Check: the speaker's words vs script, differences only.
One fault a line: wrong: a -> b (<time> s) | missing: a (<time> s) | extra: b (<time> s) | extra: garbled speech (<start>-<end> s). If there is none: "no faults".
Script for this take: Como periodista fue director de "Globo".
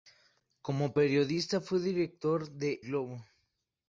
no faults